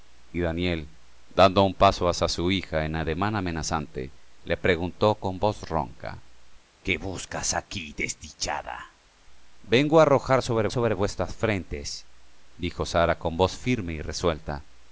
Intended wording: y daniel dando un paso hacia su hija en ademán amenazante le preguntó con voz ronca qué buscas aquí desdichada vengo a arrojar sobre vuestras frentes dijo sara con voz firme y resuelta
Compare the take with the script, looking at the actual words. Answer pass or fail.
fail